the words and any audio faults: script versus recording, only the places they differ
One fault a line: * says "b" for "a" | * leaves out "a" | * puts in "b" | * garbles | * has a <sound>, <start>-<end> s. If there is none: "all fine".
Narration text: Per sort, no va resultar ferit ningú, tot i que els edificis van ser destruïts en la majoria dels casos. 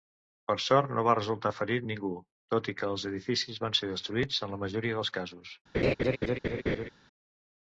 * has a laugh, 5.7-6.9 s